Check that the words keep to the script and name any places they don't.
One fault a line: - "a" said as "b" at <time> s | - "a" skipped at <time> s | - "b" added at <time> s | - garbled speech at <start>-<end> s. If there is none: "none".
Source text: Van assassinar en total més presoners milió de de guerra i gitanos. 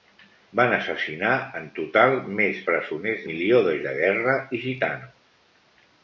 none